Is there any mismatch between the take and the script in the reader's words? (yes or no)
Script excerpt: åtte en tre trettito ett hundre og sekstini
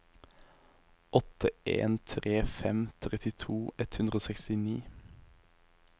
yes